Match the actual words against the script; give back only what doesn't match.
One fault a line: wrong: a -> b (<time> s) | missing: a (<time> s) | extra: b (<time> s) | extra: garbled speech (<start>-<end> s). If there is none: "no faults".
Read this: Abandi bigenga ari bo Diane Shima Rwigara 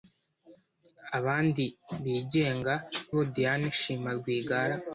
missing: ari (2.7 s)